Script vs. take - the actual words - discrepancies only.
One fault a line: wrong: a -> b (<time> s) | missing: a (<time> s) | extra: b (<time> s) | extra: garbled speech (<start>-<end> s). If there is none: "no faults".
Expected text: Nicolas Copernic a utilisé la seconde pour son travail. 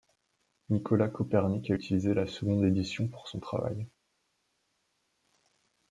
extra: édition (2.6 s)